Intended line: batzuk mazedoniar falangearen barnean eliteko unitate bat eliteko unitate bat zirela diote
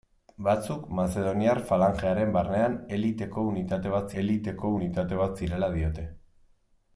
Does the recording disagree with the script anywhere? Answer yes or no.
no